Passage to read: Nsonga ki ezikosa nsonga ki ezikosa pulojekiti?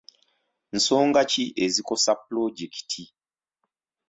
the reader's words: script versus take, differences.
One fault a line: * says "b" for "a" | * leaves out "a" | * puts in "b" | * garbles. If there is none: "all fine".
* leaves out "nsonga ki ezikosa"